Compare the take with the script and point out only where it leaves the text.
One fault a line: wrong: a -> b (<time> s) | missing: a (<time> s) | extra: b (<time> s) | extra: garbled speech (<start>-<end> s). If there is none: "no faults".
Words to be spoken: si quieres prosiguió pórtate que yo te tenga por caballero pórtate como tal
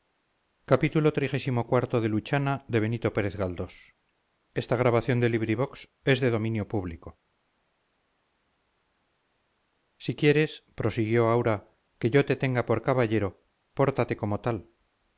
wrong: pórtate -> aura (11.3 s)